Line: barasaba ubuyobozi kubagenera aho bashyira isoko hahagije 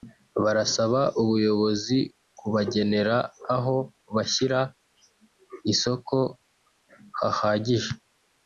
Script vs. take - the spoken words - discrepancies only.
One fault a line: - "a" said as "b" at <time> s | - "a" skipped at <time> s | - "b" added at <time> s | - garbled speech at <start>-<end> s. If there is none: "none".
none